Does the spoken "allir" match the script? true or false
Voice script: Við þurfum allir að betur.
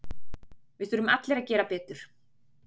true